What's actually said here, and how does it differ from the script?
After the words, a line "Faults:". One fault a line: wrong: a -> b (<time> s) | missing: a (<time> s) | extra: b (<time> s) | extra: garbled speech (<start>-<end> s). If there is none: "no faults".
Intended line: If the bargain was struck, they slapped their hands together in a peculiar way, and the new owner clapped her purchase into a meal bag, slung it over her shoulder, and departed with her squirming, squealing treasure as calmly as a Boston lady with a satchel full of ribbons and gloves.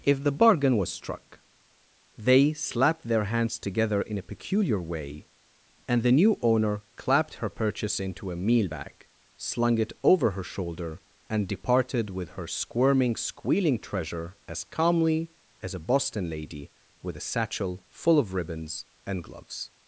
If the bargain was struck, they slapped their hands together in a peculiar way, and the new owner clapped her purchase into a meal bag, slung it over her shoulder, and departed with her squirming, squealing treasure as calmly as a Boston lady with a satchel full of ribbons and gloves.
Faults:
no faults